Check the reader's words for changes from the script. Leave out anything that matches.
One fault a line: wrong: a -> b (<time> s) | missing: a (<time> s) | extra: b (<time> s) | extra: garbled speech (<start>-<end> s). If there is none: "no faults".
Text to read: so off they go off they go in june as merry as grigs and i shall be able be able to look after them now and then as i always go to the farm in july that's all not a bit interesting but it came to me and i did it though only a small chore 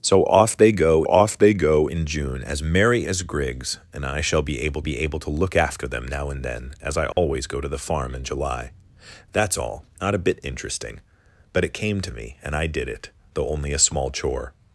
no faults